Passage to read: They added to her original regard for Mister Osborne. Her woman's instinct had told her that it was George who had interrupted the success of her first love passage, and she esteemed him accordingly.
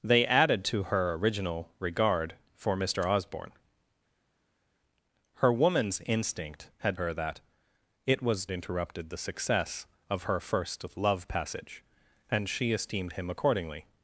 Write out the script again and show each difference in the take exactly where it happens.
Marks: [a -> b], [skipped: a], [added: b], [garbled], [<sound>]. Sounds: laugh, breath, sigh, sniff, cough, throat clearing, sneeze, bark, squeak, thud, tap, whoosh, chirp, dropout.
They added to her original regard for Mister Osborne. Her woman's instinct had [skipped: told] her that it was [skipped: George who had] interrupted the success of her first love passage, and she esteemed him accordingly.